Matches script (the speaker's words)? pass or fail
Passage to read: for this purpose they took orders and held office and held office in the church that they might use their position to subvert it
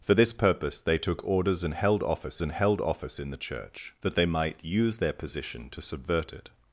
pass